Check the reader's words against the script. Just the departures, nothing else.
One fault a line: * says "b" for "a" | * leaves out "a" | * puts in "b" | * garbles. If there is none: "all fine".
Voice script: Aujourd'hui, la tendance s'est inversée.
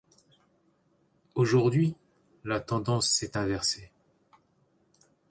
all fine